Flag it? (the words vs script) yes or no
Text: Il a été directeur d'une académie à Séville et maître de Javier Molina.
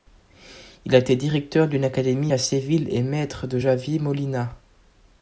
no